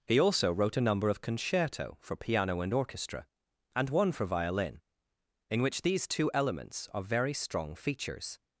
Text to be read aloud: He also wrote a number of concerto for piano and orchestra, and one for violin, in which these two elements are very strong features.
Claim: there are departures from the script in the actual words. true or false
false